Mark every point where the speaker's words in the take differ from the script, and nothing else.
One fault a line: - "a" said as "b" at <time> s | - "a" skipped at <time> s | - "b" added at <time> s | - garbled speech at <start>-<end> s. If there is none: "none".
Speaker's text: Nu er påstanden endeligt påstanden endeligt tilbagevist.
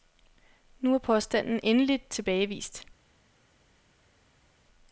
- "påstanden endeligt" skipped at 2.1 s